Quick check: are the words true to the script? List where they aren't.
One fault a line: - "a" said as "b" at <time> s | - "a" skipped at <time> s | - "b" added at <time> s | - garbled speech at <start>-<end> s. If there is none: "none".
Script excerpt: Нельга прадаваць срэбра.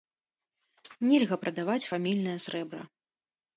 - "фамільнае" added at 1.9 s